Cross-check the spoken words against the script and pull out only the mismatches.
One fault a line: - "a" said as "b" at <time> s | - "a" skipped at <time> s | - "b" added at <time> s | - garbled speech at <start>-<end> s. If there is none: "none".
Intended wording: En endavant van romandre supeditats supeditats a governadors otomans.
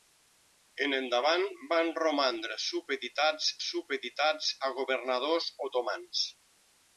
none